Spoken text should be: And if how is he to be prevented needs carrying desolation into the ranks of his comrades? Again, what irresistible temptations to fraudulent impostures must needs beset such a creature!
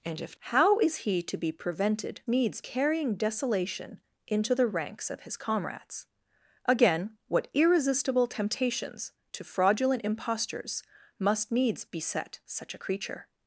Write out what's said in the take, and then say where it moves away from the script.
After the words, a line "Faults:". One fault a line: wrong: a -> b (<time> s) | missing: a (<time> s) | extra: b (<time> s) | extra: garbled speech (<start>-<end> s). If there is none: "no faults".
And if how is he to be prevented needs carrying desolation into the ranks of his comrades? Again, what irresistible temptations to fraudulent impostures must needs beset such a creature!
Faults:
no faults